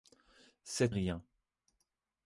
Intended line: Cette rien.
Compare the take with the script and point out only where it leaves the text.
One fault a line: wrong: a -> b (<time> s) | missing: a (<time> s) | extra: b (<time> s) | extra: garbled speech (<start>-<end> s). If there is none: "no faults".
no faults